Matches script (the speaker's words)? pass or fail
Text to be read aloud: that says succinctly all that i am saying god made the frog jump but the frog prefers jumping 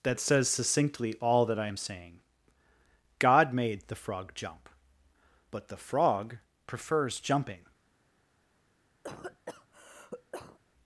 pass